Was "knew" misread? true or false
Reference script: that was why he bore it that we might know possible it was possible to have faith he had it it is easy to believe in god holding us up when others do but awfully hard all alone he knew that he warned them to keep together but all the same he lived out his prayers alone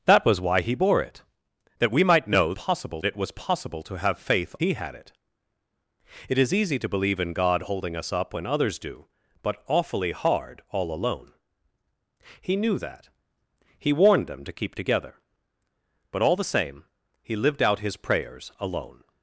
false